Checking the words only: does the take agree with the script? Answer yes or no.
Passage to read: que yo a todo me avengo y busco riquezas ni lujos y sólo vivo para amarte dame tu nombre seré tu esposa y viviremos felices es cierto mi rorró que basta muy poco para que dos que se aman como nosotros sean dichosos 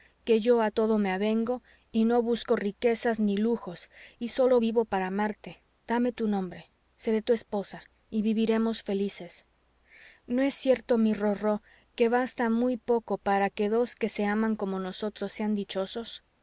no